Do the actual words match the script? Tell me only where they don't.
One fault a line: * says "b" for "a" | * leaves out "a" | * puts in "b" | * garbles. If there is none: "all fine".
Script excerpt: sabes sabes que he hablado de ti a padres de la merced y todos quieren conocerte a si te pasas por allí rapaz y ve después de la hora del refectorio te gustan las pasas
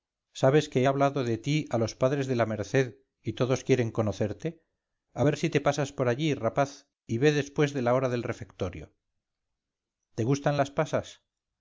* leaves out "sabes"
* puts in "los"
* puts in "ver"